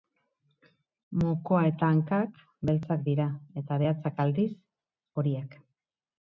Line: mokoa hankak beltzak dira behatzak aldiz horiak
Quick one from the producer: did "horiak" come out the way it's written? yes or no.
yes